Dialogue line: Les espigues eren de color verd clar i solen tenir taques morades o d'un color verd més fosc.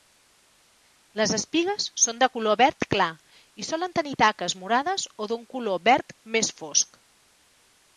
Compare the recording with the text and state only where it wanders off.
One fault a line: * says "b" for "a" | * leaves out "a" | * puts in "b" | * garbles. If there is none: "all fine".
* says "són" for "eren"